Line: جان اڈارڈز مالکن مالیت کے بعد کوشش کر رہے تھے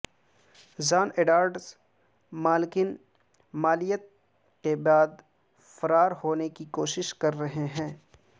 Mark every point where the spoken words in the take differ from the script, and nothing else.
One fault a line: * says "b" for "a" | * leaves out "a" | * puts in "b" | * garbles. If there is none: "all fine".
* puts in "فرار ہونے کی"
* says "ہیں" for "تھے"